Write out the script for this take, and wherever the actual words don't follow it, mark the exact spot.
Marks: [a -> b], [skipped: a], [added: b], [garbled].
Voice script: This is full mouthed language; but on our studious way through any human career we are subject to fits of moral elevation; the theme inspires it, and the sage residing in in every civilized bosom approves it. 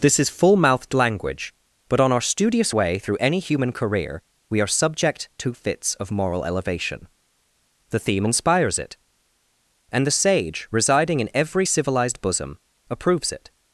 This is full mouthed language; but on our studious way through any human career we are subject to fits of moral elevation; the theme inspires it, and the sage residing in [skipped: in] every civilized bosom approves it.